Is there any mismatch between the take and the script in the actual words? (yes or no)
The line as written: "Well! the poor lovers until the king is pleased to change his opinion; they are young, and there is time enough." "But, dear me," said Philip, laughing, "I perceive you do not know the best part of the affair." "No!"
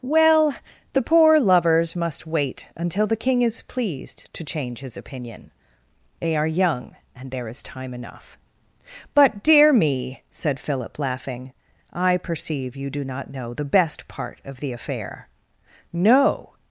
yes